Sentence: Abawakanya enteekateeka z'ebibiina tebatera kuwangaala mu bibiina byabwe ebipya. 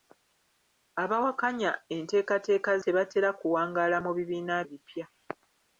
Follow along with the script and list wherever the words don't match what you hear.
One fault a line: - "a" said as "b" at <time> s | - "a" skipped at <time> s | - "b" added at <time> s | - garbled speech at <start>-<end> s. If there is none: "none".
- "z'ebibiina" skipped at 2.7 s
- "byabwe" skipped at 4.6 s